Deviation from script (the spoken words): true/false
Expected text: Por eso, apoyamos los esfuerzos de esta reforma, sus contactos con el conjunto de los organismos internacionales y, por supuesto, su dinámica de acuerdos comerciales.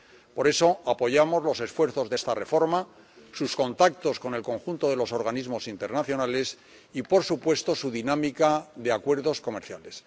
false